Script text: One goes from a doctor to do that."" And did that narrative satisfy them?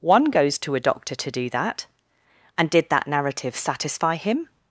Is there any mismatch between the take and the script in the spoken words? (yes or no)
yes